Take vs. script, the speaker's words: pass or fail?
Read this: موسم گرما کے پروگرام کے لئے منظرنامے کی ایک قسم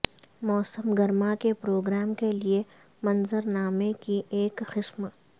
pass